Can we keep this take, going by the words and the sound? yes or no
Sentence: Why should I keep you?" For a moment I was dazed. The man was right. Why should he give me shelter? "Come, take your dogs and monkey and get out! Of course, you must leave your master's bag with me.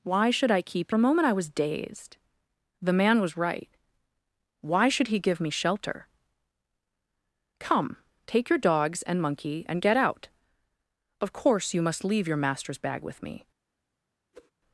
no